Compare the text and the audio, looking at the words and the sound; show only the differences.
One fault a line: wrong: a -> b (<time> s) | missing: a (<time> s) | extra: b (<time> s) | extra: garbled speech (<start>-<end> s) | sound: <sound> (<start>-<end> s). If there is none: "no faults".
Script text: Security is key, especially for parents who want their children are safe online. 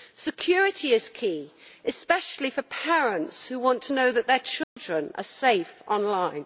extra: to know that (3.8 s)
sound: dropout (4.6-4.8 s)